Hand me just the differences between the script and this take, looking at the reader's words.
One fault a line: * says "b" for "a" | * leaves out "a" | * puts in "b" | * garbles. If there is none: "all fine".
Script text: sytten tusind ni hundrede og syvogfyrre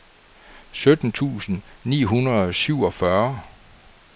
all fine